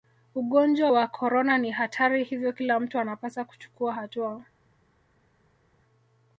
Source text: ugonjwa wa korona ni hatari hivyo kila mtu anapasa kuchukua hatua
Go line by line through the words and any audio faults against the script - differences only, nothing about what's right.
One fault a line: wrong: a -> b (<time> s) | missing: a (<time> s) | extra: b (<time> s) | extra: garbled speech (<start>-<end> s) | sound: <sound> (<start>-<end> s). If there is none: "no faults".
no faults